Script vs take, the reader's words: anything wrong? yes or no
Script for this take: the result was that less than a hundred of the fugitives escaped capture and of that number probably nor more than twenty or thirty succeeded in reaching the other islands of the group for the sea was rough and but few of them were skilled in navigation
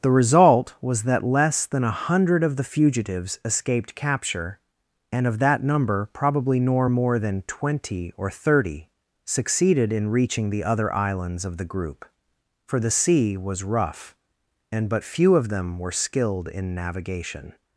no